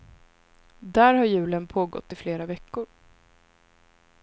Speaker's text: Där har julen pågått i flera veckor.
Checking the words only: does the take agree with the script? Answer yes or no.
yes